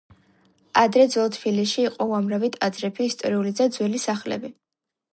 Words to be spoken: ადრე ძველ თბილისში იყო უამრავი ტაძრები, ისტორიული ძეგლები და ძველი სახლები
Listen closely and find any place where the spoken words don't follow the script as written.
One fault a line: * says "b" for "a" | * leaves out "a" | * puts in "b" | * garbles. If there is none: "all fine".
* leaves out "ძეგლები"